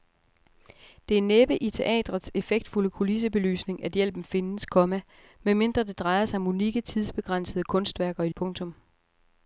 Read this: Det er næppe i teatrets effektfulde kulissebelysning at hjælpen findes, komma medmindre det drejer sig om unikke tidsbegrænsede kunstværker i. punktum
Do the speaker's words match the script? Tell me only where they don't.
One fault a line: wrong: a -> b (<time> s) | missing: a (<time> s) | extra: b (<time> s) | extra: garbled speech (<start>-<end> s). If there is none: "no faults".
no faults